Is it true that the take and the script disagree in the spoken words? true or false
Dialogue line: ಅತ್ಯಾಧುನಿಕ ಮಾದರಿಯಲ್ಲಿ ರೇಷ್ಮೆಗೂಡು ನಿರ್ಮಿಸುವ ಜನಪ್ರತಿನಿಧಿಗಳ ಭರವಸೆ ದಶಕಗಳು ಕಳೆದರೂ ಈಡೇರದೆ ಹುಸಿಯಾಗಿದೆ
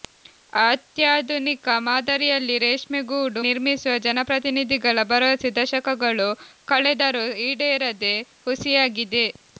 false